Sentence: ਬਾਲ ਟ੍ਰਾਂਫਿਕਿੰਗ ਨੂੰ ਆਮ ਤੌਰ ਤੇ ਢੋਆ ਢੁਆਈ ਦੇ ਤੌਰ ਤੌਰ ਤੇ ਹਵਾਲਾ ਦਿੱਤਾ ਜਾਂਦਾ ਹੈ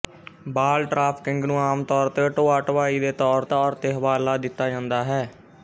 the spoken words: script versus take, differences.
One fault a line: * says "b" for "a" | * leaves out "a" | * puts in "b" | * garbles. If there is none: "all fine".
all fine